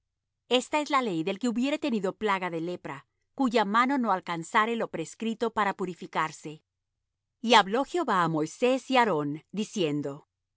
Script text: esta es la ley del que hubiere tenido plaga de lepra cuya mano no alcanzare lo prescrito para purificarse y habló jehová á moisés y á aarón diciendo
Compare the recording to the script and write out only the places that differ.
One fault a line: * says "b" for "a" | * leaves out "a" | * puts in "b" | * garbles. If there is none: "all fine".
all fine